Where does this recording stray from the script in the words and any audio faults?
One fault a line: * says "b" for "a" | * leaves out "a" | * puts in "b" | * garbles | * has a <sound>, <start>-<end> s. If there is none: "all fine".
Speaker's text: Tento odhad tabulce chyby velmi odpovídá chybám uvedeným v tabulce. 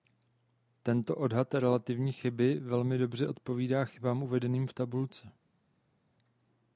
* says "relativní" for "tabulce"
* puts in "dobře"